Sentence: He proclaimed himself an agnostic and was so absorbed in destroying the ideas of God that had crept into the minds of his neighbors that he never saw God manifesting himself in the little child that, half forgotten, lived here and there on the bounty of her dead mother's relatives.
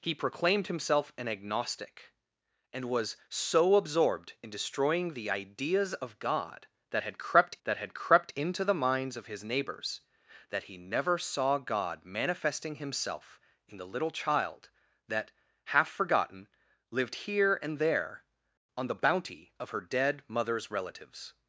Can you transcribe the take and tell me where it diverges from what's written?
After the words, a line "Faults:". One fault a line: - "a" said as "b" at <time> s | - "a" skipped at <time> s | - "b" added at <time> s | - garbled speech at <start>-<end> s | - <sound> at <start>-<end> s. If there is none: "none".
He proclaimed himself an agnostic and was so absorbed in destroying the ideas of God that had crept that had crept into the minds of his neighbors that he never saw God manifesting himself in the little child that, half forgotten, lived here and there on the bounty of her dead mother's relatives.
Faults:
- "that had crept" added at 7.6 s